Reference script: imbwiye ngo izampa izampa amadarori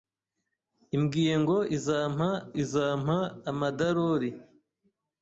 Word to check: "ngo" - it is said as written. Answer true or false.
true